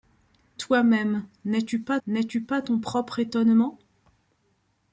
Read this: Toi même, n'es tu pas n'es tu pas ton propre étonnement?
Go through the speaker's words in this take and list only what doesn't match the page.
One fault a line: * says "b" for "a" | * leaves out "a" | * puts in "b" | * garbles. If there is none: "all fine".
all fine